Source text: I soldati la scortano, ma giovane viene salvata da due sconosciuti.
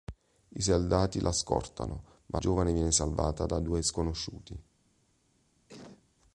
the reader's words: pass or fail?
pass